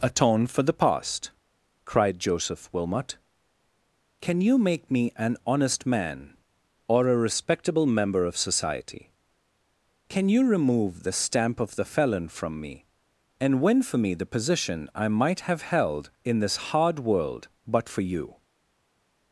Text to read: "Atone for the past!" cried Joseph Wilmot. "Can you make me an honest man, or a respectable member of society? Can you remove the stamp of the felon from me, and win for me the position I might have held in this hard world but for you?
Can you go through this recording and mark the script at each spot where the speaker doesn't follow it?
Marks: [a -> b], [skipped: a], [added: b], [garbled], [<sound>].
"Atone for the past!" cried Joseph Wilmot. "Can you make me an honest man, or a respectable member of society? Can you remove the stamp of the felon from me, and win for me the position I might have held in this hard world but for you?